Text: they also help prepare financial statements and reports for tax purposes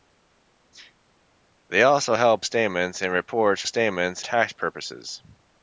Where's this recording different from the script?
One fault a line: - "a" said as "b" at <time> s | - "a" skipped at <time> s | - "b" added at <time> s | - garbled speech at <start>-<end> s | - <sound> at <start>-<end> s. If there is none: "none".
- "prepare financial" skipped at 2.4 s
- "for" said as "statements" at 3.6 s